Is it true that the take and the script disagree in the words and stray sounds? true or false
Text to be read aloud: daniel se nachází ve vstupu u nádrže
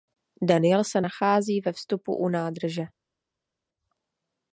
false